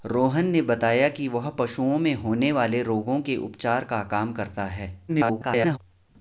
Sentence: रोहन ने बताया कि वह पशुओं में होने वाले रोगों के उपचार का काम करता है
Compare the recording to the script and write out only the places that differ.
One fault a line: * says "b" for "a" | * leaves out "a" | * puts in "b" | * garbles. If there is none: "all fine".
* garbles